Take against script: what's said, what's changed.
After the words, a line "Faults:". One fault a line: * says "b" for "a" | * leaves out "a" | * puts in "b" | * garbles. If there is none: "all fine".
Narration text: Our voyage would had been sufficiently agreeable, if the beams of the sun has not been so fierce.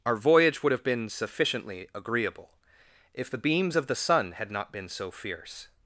Our voyage would have been sufficiently agreeable, if the beams of the sun had not been so fierce.
Faults:
* says "have" for "had"
* says "had" for "has"